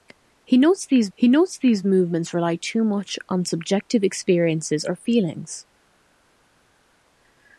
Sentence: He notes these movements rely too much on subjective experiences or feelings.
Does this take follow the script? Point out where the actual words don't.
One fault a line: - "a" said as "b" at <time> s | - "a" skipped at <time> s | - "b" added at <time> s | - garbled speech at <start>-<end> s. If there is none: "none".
- "he notes these" added at 1.1 s